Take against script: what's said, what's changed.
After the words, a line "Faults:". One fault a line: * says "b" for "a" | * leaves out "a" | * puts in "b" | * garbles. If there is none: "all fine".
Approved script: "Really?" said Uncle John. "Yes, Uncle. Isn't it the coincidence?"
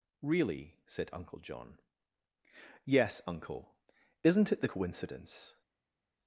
"Really?" said Uncle John. "Yes, Uncle. Isn't it the coincidence?"
Faults:
all fine